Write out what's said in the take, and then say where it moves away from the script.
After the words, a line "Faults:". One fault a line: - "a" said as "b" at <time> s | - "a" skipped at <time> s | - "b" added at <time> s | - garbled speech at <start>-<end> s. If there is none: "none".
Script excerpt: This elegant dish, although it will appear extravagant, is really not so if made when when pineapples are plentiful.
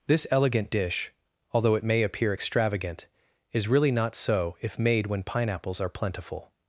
This elegant dish, although it may appear extravagant, is really not so if made when pineapples are plentiful.
Faults:
- "will" said as "may" at 1.8 s
- "when" skipped at 5.2 s